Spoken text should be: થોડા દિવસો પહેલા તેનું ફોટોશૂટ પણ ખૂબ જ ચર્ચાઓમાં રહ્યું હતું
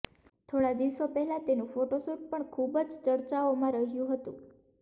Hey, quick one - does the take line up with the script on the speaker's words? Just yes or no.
yes